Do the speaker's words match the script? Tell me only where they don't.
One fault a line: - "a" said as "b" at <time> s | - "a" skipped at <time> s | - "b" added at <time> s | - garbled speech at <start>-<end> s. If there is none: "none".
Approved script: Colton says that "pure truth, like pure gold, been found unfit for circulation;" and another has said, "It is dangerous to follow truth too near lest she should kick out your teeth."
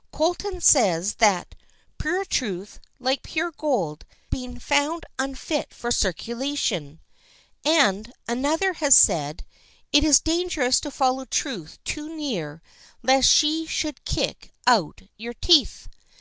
none